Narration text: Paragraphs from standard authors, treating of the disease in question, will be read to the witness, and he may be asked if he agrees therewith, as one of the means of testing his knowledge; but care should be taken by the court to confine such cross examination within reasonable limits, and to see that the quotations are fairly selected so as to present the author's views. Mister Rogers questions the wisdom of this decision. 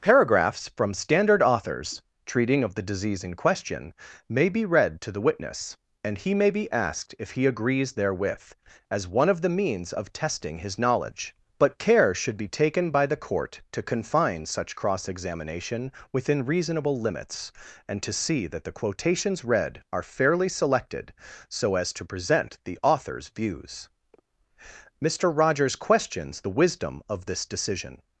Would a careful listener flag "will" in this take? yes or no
yes